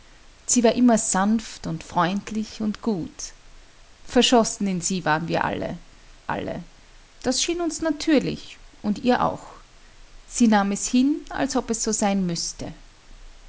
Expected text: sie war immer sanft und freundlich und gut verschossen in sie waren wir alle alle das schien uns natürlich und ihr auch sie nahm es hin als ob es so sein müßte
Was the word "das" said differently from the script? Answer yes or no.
no